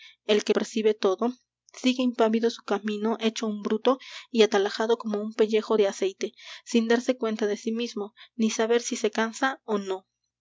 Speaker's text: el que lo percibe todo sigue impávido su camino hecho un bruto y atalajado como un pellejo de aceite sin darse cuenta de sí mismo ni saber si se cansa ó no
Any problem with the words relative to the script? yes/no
yes